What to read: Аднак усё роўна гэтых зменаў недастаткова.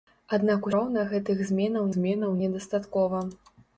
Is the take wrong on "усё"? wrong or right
wrong